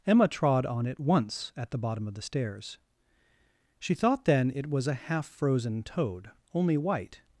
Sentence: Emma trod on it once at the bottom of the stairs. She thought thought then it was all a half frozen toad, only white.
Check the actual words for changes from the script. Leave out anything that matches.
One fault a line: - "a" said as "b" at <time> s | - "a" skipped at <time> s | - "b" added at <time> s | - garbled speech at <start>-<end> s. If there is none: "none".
- "thought" skipped at 4.2 s
- "all" skipped at 4.9 s